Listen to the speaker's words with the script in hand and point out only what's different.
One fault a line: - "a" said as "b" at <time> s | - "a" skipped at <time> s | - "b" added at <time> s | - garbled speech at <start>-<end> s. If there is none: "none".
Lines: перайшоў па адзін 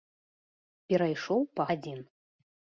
none